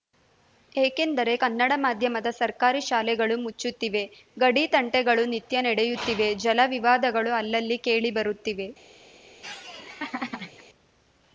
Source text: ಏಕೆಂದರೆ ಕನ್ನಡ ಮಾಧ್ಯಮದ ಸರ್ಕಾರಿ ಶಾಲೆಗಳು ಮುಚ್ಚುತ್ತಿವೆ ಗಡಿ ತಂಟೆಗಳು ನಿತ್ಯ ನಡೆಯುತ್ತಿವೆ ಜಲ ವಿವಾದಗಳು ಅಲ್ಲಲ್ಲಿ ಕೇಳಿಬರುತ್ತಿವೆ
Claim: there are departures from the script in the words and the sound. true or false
true